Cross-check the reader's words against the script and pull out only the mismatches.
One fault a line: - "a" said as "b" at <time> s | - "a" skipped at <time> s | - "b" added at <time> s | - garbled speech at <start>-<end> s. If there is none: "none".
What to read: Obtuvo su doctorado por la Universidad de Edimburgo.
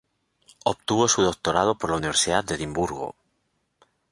none